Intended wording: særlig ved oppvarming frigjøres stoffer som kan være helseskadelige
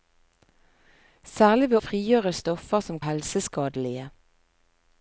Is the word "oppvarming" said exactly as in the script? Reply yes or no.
no